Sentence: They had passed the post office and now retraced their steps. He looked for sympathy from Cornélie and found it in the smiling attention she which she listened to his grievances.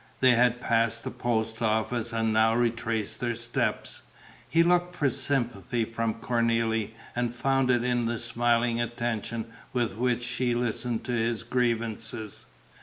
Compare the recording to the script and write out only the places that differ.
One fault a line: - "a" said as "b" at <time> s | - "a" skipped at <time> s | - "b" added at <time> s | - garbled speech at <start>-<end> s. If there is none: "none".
- "she" said as "with" at 9.7 s